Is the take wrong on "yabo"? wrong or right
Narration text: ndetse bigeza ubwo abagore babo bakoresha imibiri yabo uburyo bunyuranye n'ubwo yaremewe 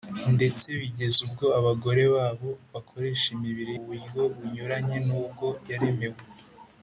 wrong